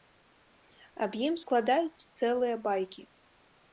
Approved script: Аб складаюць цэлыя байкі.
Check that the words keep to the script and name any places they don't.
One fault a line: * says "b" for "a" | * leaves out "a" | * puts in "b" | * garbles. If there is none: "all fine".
* puts in "ім"